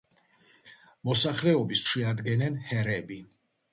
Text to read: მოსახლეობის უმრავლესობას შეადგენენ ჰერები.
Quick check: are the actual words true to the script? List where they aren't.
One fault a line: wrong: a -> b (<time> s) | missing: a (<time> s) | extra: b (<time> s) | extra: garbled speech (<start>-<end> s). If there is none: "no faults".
missing: უმრავლესობას (1.8 s)